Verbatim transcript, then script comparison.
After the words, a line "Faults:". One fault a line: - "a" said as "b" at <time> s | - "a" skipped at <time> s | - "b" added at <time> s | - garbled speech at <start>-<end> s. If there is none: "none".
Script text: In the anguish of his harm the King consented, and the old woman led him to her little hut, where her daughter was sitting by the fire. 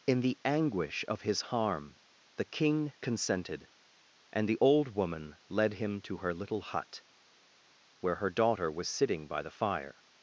In the anguish of his harm the King consented, and the old woman led him to her little hut, where her daughter was sitting by the fire.
Faults:
none